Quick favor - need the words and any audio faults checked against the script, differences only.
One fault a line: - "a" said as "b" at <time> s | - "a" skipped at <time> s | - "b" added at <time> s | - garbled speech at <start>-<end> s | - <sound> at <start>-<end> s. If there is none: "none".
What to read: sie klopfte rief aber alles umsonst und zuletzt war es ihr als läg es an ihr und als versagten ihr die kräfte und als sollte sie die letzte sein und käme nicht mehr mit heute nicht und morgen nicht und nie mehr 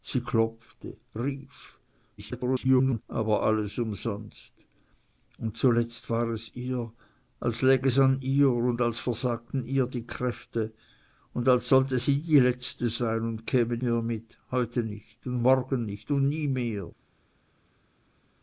- garbled speech at 2.2-3.0 s
- "nicht" skipped at 13.8 s